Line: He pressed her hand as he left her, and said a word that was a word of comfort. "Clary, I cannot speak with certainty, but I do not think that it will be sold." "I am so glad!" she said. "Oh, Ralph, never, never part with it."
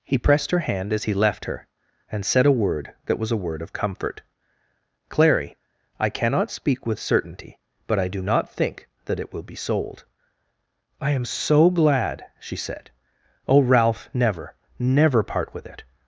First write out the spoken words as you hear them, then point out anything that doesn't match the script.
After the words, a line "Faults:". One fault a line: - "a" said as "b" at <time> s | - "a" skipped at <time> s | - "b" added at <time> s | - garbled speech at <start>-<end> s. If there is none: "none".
He pressed her hand as he left her, and said a word that was a word of comfort. "Clary, I cannot speak with certainty, but I do not think that it will be sold." "I am so glad!" she said. "Oh, Ralph, never, never part with it."
Faults:
none